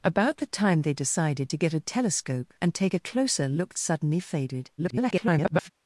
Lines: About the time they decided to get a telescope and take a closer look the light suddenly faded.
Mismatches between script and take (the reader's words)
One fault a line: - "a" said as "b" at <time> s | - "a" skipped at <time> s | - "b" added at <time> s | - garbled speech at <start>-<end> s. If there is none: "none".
- "the light" skipped at 3.7 s
- garbled speech at 4.8-5.7 s